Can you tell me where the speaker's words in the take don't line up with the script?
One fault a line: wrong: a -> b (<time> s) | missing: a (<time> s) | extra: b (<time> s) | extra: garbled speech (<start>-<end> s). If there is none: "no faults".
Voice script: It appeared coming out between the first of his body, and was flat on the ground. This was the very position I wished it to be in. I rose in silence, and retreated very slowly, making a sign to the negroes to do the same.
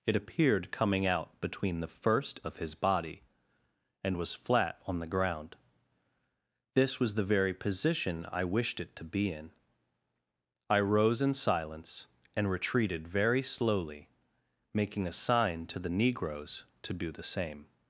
no faults